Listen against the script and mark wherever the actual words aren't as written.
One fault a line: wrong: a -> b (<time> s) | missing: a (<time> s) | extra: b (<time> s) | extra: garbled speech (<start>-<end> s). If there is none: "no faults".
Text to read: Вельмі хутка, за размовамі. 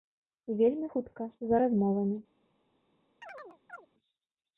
no faults